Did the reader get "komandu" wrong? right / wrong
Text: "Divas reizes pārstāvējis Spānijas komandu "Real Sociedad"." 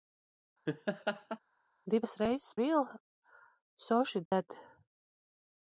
wrong